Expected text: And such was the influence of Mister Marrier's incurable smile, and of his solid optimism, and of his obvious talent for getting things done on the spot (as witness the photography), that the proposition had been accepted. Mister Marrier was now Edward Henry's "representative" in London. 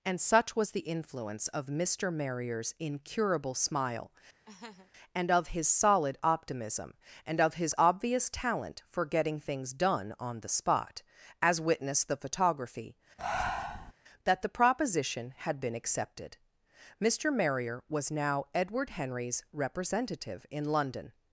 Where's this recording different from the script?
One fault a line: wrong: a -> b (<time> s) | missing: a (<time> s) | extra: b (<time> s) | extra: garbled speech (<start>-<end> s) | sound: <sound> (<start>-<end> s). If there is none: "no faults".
sound: laugh (4.5-4.9 s)
sound: breath (13.2-13.9 s)